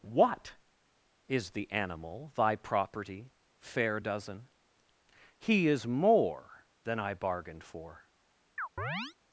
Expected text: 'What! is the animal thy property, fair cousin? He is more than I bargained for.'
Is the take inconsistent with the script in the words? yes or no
yes